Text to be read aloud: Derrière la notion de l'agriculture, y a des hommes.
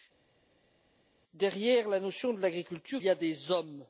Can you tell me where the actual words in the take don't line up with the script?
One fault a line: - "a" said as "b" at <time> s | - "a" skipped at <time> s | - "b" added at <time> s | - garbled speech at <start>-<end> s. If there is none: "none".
none